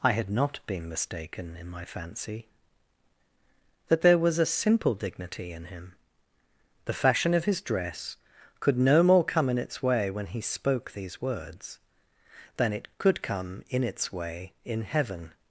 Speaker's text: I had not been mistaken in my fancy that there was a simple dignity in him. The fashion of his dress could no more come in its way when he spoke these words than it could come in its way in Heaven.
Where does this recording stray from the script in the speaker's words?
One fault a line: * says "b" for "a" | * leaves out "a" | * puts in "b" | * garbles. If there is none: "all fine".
all fine